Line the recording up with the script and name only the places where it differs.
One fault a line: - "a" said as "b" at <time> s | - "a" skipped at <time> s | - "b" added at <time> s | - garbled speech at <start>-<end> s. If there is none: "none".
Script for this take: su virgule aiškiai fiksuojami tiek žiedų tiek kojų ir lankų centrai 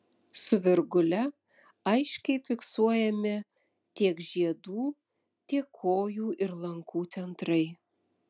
none